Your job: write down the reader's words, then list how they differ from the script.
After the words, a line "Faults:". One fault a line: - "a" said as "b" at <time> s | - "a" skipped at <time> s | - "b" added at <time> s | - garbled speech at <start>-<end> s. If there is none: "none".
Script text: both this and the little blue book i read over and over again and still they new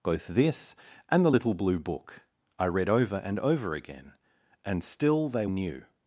both this and the little blue book i read over and over again and still they new
Faults:
none